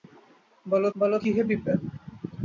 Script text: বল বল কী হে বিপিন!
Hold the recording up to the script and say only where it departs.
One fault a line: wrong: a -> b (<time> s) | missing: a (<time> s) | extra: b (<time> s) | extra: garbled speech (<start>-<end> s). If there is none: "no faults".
no faults